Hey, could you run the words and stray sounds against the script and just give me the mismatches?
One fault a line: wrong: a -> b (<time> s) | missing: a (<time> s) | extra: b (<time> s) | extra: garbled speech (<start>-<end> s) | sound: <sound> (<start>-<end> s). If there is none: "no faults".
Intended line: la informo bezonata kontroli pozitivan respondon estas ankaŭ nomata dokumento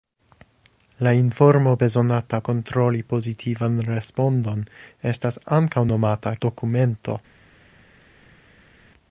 no faults